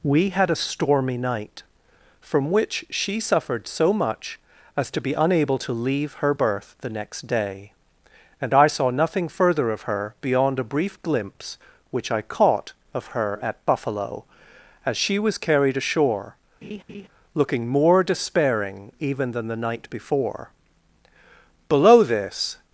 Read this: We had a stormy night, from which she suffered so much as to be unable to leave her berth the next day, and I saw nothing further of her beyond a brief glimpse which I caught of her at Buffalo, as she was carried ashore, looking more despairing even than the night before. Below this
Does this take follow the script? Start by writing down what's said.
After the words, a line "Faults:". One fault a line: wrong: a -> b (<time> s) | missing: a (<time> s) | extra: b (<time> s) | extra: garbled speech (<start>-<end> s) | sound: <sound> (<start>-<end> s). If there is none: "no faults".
We had a stormy night, from which she suffered so much as to be unable to leave her berth the next day, and I saw nothing further of her beyond a brief glimpse which I caught of her at Buffalo, as she was carried ashore, looking more despairing even than the night before. Below this
Faults:
sound: laugh (16.6-17.1 s)